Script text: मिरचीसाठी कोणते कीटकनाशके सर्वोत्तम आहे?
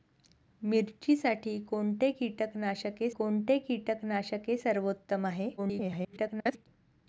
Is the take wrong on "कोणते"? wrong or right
right